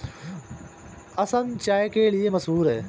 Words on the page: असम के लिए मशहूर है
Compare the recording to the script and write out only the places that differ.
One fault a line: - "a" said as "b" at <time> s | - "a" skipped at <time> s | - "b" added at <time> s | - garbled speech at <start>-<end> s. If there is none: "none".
- "चाय" added at 1.6 s